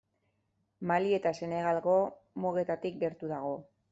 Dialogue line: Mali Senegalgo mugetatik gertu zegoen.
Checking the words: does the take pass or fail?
fail